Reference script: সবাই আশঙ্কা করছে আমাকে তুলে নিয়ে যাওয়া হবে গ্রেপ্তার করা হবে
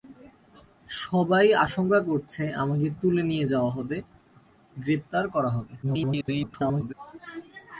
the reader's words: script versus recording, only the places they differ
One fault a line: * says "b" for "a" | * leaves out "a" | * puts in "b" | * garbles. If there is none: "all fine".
* garbles